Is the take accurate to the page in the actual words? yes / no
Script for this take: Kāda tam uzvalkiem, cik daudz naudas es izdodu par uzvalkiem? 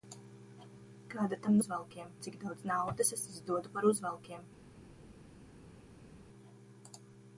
yes